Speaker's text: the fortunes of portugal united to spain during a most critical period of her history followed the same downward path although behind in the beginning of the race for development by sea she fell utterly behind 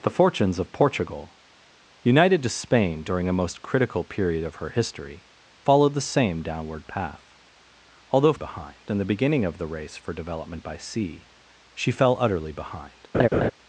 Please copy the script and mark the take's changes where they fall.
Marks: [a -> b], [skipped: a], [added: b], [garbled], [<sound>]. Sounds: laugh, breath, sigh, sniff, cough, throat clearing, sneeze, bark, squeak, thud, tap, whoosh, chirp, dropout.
the fortunes of portugal united to spain during a most critical period of her history followed the same downward path although behind in the beginning of the race for development by sea she fell utterly behind [laugh]